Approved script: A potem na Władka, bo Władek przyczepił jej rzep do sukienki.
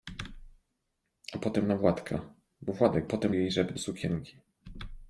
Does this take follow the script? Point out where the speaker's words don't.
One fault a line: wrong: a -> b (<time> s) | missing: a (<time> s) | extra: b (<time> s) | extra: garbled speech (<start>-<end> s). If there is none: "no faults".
wrong: przyczepił -> potem (3.0 s)
missing: do (3.7 s)